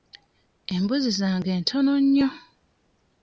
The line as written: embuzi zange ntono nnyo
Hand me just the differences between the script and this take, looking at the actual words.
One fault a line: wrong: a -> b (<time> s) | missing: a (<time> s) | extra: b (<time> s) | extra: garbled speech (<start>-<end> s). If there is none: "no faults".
no faults